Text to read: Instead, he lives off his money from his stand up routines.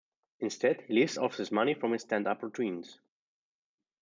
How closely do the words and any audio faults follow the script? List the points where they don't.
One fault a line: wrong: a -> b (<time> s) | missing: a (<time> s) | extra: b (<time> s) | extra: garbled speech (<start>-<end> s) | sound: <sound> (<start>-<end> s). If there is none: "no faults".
no faults